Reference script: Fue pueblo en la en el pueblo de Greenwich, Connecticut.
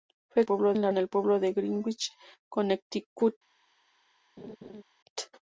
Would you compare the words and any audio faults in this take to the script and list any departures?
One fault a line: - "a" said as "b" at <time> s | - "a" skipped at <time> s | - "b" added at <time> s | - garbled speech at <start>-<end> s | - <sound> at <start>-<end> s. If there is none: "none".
- laugh at 4.4-4.8 s